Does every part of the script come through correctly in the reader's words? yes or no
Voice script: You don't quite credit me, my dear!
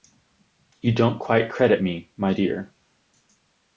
yes